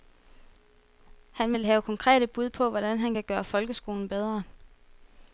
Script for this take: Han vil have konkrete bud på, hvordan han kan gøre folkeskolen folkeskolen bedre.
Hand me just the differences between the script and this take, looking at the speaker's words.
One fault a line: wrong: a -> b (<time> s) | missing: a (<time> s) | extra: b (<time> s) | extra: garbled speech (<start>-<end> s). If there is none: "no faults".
missing: folkeskolen (4.1 s)